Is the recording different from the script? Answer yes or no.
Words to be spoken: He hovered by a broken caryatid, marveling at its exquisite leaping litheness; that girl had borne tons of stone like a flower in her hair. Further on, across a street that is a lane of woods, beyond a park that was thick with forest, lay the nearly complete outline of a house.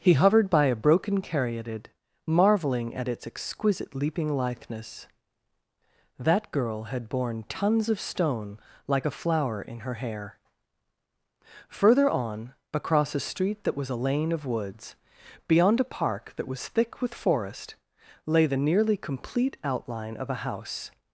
yes